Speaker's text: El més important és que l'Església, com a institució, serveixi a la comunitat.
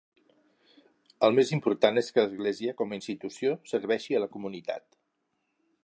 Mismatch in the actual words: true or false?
false